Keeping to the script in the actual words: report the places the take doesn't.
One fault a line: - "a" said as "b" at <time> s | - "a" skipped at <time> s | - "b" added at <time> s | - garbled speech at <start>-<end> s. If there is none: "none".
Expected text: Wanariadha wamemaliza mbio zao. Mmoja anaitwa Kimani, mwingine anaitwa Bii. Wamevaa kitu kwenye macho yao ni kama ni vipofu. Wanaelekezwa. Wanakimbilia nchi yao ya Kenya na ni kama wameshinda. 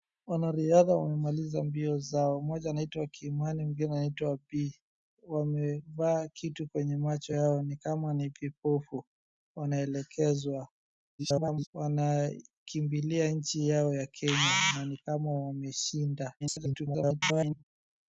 - garbled speech at 11.2-11.7 s
- garbled speech at 16.4-17.6 s